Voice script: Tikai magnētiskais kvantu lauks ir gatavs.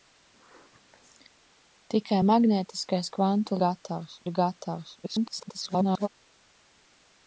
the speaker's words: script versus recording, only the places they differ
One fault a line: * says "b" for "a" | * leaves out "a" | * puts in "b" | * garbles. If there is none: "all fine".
* says "gatavs" for "lauks"
* garbles